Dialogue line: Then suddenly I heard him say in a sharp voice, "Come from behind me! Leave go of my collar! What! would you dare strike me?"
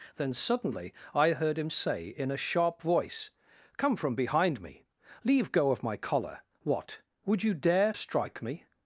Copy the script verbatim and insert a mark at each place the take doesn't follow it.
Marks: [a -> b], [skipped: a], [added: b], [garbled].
Then suddenly I heard him say in a sharp voice, "Come from behind me! Leave go of my collar! What! would you dare strike me?"